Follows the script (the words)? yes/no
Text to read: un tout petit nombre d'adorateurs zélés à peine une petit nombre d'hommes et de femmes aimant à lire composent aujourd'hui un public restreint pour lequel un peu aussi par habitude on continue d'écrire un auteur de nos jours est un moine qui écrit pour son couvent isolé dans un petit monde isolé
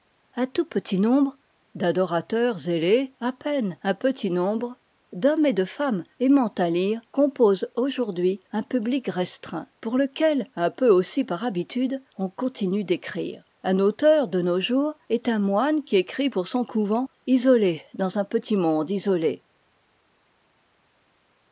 no